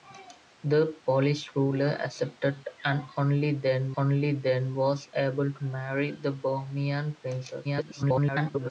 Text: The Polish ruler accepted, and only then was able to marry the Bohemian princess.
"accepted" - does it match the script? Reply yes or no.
yes